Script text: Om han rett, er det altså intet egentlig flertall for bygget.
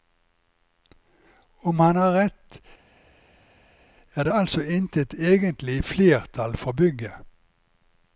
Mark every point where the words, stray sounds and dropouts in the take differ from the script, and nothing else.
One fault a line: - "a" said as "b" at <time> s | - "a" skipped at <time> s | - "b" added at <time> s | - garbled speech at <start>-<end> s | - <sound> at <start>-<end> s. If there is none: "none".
- "har" added at 1.9 s